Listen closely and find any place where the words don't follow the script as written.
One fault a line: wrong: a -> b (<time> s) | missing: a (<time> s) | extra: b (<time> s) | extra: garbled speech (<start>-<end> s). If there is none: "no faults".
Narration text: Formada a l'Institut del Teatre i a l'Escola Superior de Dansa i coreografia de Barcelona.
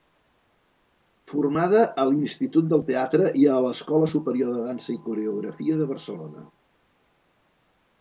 no faults